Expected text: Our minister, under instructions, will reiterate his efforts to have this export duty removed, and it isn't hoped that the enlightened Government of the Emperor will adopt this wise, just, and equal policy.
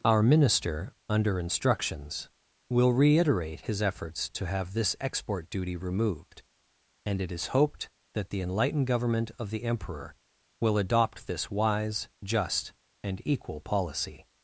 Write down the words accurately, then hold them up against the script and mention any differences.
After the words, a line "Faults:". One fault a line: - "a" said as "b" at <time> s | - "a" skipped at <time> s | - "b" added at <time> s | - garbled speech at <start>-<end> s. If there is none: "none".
Our minister, under instructions, will reiterate his efforts to have this export duty removed, and it is hoped that the enlightened Government of the Emperor will adopt this wise, just, and equal policy.
Faults:
- "isn't" said as "is" at 7.3 s